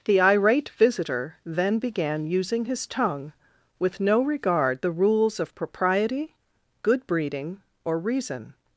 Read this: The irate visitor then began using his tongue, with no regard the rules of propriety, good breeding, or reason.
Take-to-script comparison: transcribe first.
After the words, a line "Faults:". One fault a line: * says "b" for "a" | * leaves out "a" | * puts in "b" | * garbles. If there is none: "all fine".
The irate visitor then began using his tongue, with no regard the rules of propriety, good breeding, or reason.
Faults:
all fine